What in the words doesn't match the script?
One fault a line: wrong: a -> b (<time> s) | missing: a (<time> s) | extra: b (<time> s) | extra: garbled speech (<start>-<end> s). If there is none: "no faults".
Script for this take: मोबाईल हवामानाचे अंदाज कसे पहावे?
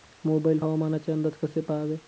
no faults